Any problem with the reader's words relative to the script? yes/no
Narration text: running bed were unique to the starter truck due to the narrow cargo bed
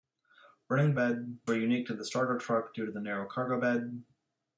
no